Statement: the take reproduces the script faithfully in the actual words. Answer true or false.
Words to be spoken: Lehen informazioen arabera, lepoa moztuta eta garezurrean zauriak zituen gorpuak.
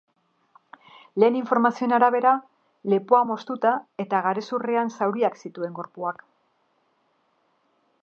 true